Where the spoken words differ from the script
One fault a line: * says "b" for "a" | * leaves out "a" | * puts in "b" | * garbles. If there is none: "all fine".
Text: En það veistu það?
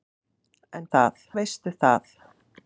all fine